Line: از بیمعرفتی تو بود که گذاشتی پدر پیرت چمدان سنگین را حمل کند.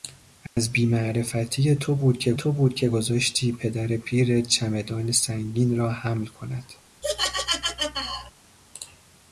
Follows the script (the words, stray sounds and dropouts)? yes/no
no